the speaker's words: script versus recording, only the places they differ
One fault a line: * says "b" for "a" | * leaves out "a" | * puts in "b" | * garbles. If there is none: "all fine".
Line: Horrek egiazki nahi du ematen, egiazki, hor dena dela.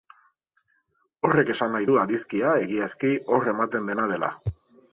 * says "esan" for "egiazki"
* says "adizkia" for "ematen"
* puts in "ematen"